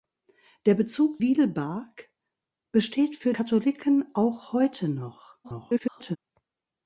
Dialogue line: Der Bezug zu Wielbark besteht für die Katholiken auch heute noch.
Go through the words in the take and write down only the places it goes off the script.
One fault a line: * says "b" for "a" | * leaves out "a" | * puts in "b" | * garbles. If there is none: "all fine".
* leaves out "zu"
* leaves out "die"
* garbles